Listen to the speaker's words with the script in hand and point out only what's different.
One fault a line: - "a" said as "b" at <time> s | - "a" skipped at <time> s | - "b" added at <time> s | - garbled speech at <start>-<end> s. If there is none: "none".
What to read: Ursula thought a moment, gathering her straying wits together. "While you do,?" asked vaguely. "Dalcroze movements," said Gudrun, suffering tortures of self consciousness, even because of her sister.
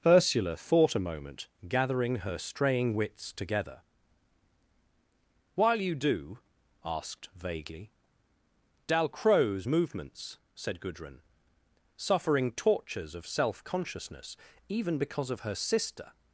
none